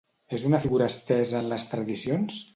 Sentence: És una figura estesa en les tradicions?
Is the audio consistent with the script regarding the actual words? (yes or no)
yes